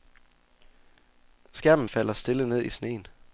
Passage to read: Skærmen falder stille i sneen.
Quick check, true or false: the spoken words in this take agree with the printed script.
false